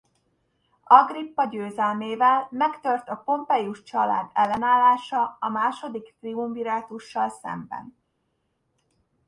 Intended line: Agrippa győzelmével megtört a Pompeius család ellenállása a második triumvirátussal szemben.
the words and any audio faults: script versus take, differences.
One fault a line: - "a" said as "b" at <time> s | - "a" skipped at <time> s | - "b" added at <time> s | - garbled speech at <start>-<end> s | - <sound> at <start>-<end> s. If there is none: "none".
none